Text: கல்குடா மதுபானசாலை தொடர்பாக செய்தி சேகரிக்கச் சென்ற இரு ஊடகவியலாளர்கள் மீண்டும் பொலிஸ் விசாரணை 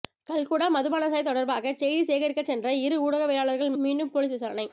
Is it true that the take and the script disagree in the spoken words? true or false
false